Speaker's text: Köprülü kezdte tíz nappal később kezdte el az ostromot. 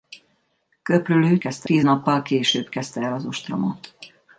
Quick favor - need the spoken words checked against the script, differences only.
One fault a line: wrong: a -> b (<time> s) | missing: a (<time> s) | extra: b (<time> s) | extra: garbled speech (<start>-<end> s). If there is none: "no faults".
no faults